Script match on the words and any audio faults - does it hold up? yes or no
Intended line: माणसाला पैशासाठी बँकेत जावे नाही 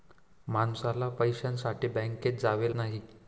yes